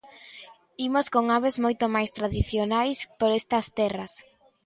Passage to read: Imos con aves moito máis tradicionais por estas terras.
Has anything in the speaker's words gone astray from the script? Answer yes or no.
no